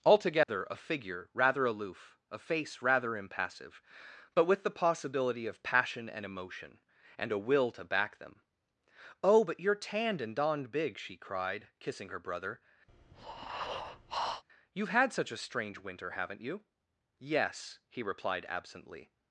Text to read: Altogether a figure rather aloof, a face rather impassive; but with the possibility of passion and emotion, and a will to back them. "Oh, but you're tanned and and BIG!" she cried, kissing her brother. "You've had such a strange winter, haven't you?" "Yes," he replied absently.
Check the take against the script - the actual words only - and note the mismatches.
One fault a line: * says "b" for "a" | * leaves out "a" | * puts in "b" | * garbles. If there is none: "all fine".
* says "donned" for "and"